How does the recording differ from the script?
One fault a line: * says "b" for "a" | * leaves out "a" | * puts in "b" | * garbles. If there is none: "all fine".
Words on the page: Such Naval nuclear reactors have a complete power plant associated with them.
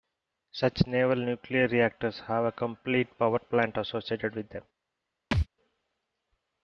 all fine